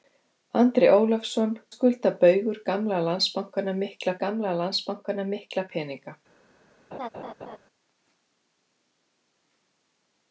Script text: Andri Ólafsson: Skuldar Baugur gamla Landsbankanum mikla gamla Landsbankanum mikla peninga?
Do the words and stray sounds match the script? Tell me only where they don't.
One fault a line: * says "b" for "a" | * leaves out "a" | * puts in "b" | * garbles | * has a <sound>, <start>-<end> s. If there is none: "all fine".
* has a laugh, 6.9-7.6 s